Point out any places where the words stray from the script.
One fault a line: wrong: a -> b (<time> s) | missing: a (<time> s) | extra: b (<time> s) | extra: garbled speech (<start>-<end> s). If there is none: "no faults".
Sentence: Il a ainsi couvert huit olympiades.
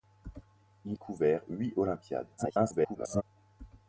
missing: a ainsi (1.0 s)
extra: garbled speech (2.4-3.2 s)